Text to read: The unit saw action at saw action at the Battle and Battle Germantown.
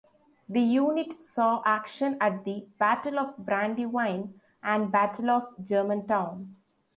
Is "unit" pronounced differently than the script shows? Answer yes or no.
no